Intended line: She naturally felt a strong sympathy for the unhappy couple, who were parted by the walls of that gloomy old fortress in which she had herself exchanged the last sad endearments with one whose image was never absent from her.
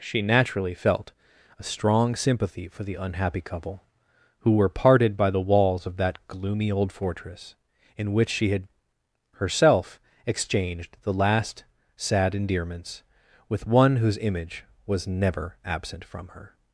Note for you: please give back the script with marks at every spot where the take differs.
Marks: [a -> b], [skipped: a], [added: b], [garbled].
She naturally felt a strong sympathy for the unhappy couple, who were parted by the walls of that gloomy old fortress in which she had herself exchanged the last sad endearments with one whose image was never absent from her.